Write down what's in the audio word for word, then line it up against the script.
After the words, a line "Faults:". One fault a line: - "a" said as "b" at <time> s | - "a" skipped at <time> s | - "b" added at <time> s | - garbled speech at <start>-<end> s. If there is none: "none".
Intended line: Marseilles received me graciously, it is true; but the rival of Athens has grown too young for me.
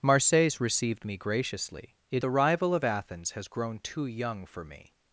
Marseilles received me graciously, it the rival of Athens has grown too young for me.
Faults:
- "is true but" skipped at 2.2 s